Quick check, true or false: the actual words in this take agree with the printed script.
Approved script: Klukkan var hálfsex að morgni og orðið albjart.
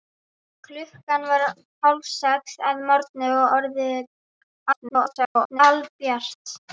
false